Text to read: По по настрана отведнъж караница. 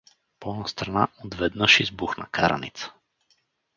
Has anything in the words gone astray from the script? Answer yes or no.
yes